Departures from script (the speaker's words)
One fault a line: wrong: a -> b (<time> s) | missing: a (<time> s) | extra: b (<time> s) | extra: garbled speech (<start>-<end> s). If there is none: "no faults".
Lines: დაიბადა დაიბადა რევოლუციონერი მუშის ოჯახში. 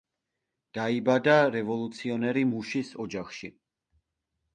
missing: დაიბადა (1.4 s)